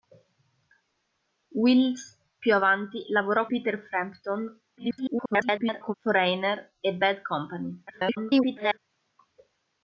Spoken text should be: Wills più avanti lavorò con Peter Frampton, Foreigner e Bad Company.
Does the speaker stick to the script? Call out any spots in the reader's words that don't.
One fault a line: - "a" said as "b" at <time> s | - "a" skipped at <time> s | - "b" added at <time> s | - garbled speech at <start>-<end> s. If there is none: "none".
- "con" skipped at 3.5 s
- garbled speech at 4.8-5.9 s
- garbled speech at 7.9-8.8 s